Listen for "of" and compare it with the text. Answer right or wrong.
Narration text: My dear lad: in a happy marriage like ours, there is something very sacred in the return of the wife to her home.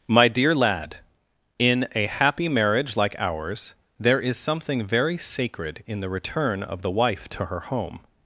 right